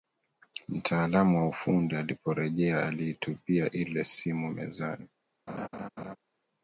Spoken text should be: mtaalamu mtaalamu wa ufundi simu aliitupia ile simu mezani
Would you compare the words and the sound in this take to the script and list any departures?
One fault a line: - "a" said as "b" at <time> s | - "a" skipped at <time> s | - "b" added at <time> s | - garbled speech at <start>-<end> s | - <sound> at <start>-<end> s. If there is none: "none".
- "mtaalamu" skipped at 1.4 s
- "simu" said as "aliporejea" at 1.9 s
- laugh at 5.5-6.2 s